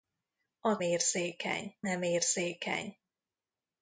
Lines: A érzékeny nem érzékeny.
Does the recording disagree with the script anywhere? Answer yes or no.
no